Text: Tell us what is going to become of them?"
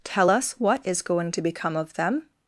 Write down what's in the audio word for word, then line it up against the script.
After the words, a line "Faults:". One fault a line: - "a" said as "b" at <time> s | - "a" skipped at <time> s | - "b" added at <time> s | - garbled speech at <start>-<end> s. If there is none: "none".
Tell us what is going to become of them?"
Faults:
none